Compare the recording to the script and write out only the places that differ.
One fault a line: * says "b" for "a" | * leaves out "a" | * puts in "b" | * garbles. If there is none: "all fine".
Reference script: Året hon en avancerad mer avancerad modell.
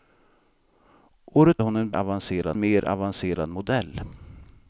all fine